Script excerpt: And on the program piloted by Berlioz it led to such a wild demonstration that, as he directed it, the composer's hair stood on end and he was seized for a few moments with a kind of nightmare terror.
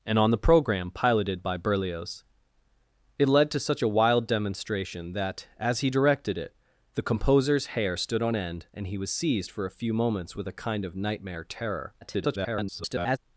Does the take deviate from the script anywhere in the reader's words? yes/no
yes